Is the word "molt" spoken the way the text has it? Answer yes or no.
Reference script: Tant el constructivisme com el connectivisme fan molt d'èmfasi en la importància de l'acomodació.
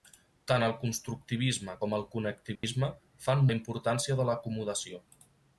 no